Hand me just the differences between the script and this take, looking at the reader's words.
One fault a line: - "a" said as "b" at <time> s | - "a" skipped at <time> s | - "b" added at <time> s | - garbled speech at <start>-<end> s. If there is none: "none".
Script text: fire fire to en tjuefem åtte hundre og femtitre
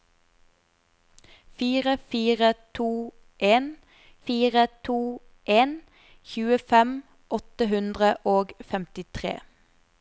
- "fire to en" added at 4.3 s